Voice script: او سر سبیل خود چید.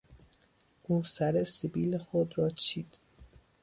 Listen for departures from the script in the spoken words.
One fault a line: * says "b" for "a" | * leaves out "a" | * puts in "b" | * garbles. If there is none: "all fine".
* puts in "را"